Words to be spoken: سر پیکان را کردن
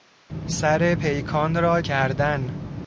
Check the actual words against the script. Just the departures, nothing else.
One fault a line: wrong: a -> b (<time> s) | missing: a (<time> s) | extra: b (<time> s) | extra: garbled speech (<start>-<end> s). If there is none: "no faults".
no faults